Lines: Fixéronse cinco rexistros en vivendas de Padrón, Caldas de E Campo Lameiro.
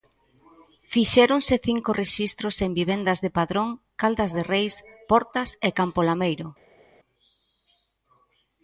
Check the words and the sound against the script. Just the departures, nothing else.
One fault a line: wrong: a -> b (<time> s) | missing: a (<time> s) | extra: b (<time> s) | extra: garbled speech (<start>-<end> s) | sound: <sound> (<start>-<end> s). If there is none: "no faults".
extra: Reis Portas (4.5 s)